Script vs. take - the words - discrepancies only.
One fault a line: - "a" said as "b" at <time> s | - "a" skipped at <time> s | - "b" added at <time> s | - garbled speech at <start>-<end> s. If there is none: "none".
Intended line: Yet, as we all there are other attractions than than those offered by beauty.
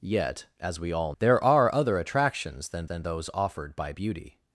none